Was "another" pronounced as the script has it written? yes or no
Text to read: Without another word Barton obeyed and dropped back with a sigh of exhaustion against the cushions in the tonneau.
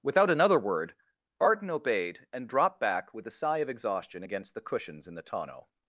yes